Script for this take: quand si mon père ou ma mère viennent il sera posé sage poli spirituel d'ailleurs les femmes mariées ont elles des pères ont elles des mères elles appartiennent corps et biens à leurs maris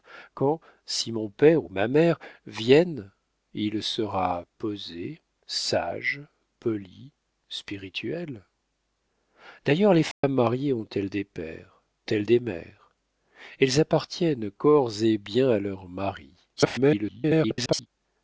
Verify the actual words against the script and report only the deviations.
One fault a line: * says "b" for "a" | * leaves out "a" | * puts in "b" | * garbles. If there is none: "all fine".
* leaves out "ont"
* garbles